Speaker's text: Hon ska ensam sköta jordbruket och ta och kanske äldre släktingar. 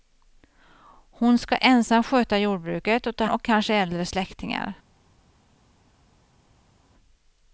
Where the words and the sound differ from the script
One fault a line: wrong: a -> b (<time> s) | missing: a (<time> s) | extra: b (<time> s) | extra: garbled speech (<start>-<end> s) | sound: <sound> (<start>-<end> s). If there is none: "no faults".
no faults